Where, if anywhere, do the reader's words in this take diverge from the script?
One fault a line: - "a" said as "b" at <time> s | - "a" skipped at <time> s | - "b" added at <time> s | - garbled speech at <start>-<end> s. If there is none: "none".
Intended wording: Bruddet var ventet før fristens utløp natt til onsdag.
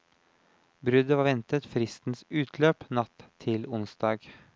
- "før" skipped at 1.7 s